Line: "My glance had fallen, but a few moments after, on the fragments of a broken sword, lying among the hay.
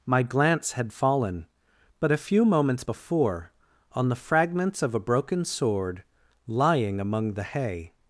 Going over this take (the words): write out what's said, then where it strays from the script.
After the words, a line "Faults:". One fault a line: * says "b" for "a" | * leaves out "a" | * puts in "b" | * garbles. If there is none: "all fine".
"My glance had fallen, but a few moments before, on the fragments of a broken sword, lying among the hay.
Faults:
* says "before" for "after"